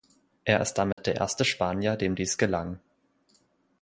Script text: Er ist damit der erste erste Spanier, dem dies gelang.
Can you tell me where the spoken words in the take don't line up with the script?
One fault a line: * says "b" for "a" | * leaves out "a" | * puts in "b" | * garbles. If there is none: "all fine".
* leaves out "erste"